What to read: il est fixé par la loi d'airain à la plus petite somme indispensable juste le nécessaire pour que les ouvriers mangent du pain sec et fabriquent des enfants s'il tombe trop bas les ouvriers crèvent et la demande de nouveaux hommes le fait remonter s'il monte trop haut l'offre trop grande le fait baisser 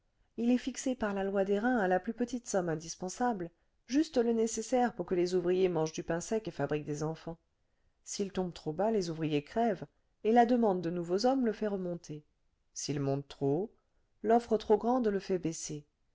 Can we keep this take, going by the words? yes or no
yes